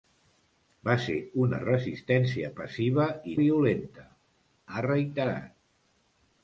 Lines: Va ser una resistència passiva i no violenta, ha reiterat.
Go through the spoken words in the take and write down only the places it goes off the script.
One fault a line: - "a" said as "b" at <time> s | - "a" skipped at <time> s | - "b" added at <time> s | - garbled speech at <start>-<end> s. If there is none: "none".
- "no" skipped at 3.4 s